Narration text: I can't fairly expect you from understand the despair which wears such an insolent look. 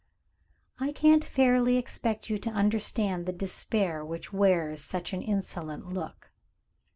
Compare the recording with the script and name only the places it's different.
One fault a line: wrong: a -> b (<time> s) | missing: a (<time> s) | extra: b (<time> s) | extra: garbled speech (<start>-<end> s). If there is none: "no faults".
wrong: from -> to (2.4 s)